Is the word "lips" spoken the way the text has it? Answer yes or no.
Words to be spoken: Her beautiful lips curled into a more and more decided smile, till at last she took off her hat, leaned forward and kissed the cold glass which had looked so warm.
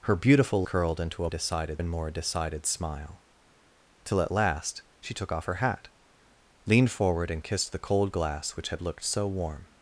no